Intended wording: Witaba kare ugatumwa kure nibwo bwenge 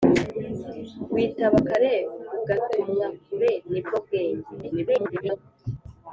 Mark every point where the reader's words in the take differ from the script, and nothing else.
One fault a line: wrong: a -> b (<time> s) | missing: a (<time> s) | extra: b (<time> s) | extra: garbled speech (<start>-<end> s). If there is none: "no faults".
extra: garbled speech (4.6-5.4 s)